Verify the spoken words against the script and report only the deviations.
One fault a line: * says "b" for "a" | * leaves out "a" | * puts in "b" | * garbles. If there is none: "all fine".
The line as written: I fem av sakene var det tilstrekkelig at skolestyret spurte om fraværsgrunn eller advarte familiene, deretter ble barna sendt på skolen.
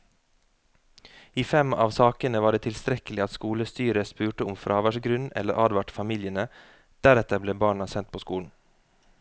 all fine